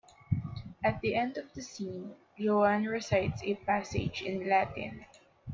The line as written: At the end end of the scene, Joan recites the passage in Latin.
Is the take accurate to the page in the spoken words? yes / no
no